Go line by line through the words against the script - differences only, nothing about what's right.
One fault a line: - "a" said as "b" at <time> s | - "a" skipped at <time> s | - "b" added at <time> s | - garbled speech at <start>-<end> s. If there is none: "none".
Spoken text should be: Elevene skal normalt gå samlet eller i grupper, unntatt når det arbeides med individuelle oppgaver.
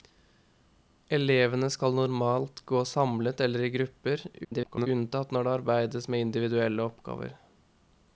- garbled speech at 4.4-4.9 s